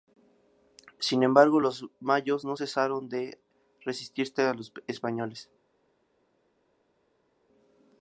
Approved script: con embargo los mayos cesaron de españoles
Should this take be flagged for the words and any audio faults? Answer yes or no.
yes